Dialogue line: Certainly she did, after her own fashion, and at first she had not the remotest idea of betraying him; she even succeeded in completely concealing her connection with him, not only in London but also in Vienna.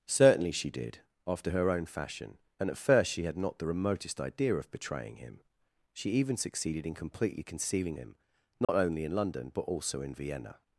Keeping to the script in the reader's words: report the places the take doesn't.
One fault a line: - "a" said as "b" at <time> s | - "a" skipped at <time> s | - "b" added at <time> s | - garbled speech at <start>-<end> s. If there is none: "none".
- "her connection with" skipped at 8.0 s